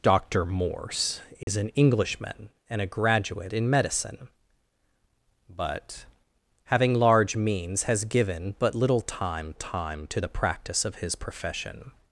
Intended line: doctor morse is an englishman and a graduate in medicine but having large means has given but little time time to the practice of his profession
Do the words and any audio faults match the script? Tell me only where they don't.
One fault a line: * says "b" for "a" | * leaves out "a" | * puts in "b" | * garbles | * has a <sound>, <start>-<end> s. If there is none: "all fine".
* has a dropout, 1.4-1.5 s